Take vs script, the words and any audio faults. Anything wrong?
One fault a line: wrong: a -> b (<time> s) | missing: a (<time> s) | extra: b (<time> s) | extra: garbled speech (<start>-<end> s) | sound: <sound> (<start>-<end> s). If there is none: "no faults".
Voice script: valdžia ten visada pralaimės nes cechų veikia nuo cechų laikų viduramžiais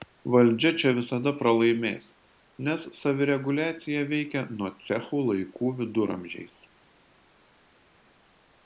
wrong: ten -> čia (0.8 s)
wrong: cechų -> savireguliacija (3.0 s)